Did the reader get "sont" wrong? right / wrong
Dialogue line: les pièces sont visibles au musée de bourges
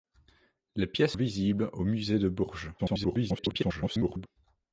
wrong